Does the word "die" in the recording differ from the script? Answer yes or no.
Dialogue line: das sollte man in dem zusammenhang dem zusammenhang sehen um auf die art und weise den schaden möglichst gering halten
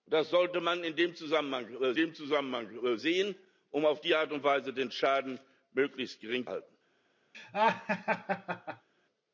no